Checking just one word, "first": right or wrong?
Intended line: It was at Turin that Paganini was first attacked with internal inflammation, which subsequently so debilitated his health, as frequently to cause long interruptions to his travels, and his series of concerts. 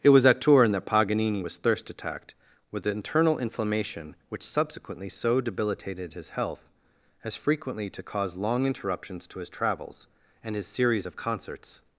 wrong